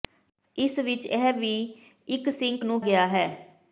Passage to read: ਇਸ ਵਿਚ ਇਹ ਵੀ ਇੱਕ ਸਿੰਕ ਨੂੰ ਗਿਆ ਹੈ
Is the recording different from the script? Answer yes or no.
no